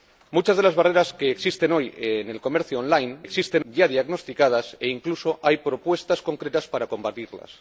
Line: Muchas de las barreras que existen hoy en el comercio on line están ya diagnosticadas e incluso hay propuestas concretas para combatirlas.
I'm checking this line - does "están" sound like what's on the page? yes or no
no